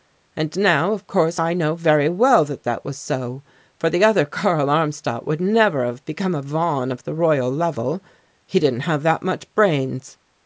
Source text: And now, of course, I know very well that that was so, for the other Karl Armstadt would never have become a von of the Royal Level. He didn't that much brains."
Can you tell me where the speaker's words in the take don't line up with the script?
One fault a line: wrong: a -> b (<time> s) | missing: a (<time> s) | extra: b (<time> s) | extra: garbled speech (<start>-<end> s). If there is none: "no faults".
extra: have (8.9 s)